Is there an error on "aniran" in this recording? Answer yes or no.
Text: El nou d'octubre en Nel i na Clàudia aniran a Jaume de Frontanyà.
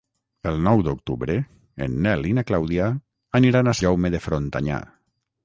no